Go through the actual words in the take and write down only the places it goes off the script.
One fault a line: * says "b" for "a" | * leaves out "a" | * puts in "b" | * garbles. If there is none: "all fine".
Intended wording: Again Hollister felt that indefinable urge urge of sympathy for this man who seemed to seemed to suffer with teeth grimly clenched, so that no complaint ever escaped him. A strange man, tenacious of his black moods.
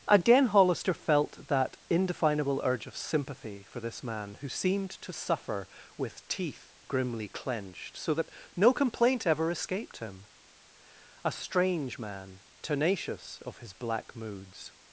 * leaves out "urge"
* leaves out "seemed to"